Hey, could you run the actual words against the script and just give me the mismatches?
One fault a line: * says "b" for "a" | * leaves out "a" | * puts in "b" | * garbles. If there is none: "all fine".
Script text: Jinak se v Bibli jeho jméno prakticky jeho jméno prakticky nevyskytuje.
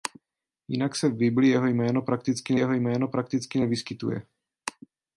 all fine